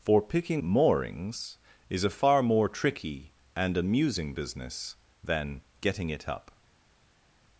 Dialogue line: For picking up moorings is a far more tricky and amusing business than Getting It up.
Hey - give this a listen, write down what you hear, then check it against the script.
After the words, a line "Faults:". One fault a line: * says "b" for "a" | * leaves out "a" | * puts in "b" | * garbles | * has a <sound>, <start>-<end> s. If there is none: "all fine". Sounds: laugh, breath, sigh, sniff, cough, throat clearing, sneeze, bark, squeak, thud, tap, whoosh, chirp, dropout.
For picking moorings is a far more tricky and amusing business than Getting It up.
Faults:
* leaves out "up"